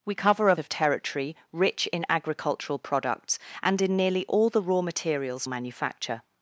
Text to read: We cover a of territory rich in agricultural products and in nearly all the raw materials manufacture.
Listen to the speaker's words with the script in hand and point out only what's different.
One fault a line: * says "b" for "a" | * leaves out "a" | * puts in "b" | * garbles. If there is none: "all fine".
all fine